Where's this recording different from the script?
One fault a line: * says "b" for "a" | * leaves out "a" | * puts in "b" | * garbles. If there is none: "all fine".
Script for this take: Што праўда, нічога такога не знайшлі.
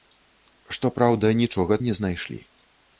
* leaves out "такога"